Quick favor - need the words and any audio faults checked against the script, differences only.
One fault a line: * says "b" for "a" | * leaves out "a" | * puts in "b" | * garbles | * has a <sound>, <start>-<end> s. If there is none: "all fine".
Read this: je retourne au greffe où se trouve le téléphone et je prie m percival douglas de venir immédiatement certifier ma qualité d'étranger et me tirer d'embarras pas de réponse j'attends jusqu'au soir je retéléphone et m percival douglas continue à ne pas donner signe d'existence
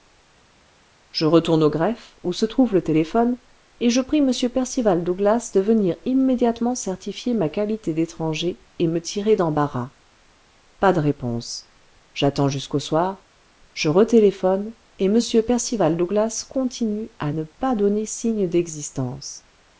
all fine